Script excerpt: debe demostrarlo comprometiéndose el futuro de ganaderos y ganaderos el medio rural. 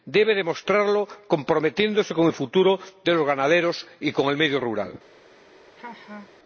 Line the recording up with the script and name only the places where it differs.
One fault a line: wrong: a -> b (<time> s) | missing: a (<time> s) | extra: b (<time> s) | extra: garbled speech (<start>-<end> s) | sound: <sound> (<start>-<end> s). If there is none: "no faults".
extra: con (2.1 s)
extra: los (3.1 s)
wrong: ganaderos -> con (4.1 s)
sound: laugh (5.8-6.3 s)